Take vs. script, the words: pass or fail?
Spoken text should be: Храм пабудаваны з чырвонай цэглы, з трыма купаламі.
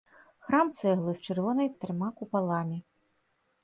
fail